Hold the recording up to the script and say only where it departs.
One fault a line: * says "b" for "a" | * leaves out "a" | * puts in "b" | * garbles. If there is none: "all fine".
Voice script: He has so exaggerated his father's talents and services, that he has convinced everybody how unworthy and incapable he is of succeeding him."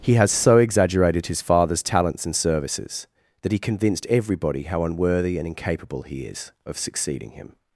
* leaves out "has"